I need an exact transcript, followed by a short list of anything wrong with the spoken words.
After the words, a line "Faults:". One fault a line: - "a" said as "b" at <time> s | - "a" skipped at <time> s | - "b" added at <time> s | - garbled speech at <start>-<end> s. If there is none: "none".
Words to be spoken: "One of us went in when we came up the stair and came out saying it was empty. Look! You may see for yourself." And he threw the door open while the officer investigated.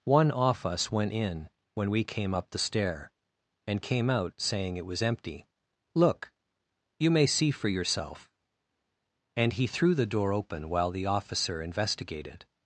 "One off us went in when we came up the stair and came out saying it was empty. Look! You may see for yourself." And he threw the door open while the officer investigated.
Faults:
- "of" said as "off" at 0.3 s